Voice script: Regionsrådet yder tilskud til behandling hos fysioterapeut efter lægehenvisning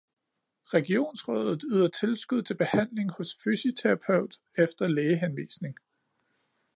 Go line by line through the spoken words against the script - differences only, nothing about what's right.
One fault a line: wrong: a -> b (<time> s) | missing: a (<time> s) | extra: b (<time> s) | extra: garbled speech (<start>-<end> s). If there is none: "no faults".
no faults